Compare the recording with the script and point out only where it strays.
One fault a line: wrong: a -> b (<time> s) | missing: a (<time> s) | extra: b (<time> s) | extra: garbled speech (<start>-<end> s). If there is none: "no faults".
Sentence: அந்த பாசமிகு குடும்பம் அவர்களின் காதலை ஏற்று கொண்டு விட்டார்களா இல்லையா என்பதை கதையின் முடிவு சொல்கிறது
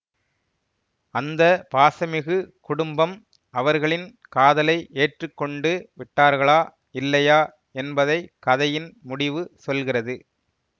no faults